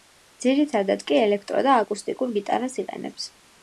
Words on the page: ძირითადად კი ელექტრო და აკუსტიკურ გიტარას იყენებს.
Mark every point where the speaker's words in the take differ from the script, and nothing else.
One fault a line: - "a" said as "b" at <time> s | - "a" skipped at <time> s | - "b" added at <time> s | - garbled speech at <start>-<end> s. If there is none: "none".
none